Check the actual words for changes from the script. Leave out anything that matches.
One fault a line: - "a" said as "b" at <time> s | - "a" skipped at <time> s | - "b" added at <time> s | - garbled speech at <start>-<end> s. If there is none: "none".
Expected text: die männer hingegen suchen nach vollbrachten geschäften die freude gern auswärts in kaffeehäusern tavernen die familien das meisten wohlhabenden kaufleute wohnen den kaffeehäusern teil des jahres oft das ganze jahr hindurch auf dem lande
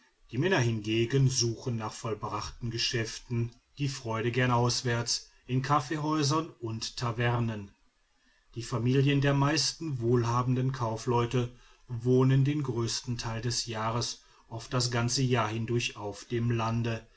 - "und" added at 6.6 s
- "das" said as "der" at 9.2 s
- "kaffeehäusern" said as "größten" at 12.6 s